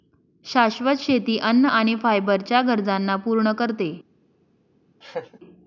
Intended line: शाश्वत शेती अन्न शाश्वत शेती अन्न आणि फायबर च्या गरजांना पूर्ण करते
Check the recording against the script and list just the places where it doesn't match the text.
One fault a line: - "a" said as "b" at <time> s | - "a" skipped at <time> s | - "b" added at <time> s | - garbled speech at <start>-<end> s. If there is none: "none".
- "शाश्वत शेती अन्न" skipped at 1.6 s